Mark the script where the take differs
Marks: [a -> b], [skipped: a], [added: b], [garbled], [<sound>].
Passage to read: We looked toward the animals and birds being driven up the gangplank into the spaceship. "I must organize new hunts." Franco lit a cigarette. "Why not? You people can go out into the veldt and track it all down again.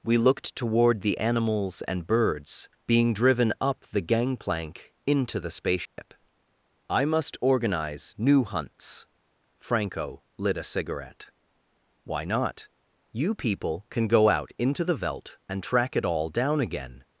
We looked toward the animals and birds being driven up the gangplank into the spaceship. [dropout] "I must organize new hunts." Franco lit a cigarette. "Why not? You people can go out into the veldt and track it all down again.